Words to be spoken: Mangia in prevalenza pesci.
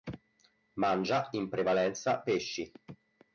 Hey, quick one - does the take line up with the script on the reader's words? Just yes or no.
yes